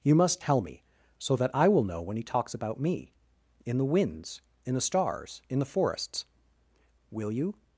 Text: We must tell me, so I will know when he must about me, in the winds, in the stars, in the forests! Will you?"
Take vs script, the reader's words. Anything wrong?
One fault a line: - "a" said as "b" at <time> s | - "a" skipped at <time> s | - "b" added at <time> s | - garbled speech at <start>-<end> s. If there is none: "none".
- "We" said as "You" at 0.0 s
- "that" added at 1.4 s
- "must" said as "talks" at 2.2 s